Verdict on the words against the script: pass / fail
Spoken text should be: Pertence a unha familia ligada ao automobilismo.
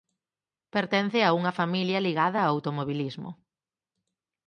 pass